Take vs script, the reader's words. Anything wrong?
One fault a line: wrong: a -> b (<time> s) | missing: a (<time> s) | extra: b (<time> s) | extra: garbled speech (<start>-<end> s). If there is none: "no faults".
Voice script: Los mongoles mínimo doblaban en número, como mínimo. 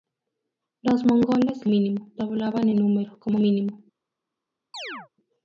no faults